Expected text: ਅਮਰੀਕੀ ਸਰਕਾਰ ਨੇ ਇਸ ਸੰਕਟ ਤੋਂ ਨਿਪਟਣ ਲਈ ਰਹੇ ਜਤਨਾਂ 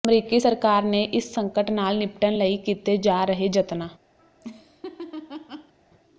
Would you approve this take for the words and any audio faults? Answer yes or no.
no